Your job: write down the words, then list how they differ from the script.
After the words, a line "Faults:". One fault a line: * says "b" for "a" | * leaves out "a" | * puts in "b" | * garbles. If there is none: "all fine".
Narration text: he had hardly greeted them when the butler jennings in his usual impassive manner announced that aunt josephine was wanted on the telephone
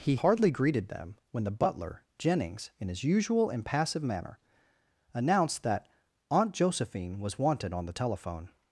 he hardly greeted them when the butler jennings in his usual impassive manner announced that aunt josephine was wanted on the telephone
Faults:
* leaves out "had"